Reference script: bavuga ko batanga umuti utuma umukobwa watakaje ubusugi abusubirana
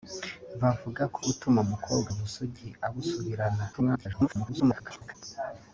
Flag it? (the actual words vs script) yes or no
yes